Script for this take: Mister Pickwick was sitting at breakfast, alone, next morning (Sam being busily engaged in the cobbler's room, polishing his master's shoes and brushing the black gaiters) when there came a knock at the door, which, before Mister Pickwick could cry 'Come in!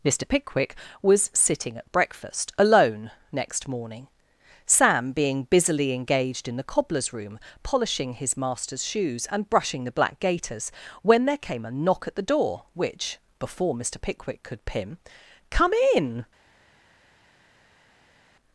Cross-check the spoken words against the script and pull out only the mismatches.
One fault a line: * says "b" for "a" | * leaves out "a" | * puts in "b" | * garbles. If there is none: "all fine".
* says "pim" for "cry"